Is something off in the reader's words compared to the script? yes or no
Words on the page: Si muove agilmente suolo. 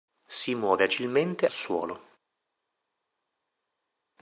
no